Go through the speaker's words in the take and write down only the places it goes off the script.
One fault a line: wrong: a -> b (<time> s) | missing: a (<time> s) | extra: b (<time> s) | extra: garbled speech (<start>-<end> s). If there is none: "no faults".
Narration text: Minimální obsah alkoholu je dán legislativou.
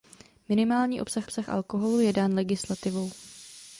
extra: obsah (1.2 s)